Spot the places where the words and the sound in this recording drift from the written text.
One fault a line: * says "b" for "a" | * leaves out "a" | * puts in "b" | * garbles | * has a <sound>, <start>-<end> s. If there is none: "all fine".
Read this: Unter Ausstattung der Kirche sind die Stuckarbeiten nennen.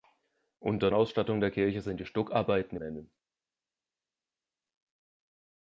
all fine